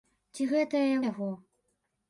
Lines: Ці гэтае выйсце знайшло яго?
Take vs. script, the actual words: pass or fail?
fail